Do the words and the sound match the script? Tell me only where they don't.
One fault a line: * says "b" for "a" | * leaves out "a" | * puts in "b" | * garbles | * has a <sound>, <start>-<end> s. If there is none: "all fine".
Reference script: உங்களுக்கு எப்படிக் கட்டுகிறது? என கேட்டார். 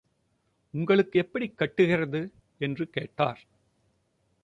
* says "என்று" for "என"